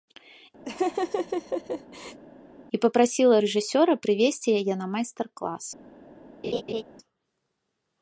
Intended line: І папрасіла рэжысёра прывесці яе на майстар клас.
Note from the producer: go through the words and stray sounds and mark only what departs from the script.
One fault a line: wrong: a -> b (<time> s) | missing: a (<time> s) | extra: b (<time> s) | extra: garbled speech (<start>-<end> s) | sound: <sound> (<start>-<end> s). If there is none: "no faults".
sound: laugh (0.6-2.2 s)
sound: laugh (6.4-6.8 s)